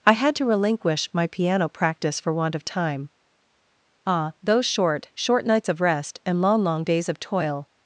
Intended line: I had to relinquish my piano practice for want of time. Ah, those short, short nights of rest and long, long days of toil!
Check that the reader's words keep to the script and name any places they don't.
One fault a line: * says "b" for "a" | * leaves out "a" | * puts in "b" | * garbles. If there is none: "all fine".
all fine